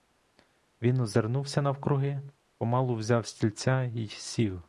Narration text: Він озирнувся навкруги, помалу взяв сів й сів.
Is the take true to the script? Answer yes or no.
no